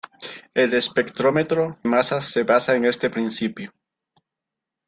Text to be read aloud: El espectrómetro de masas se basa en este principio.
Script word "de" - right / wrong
wrong